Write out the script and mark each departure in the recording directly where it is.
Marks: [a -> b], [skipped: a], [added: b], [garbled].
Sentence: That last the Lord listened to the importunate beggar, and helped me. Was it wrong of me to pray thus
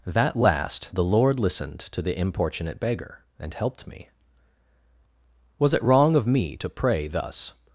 That last the Lord listened to the importunate beggar, and helped me. Was it wrong of me to pray thus